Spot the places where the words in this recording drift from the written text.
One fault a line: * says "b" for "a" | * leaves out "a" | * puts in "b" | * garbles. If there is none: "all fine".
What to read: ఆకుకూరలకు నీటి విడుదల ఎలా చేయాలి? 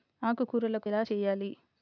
* leaves out "నీటి విడుదల"